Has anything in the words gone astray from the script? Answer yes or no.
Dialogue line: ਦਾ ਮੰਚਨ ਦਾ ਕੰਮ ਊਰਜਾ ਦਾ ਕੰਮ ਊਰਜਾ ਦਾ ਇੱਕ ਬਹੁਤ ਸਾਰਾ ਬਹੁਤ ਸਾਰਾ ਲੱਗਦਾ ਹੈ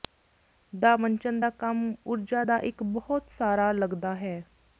yes